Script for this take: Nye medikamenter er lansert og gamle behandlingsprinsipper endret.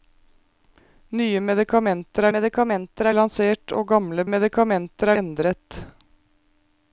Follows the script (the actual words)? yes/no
no